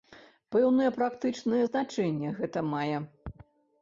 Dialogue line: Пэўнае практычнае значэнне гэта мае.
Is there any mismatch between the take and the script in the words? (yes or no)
no